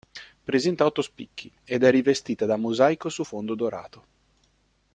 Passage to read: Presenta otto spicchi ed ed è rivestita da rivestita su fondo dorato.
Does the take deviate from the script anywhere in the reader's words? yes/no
yes